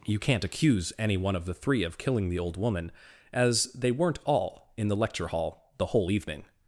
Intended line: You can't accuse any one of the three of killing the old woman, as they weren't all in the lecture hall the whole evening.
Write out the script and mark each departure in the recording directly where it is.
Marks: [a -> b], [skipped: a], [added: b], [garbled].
You can't accuse any one of the three of killing the old woman, as they weren't all in the lecture hall the whole evening.